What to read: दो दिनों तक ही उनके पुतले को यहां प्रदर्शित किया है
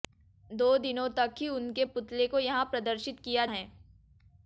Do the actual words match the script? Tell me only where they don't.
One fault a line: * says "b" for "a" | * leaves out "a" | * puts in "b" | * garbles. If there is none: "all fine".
all fine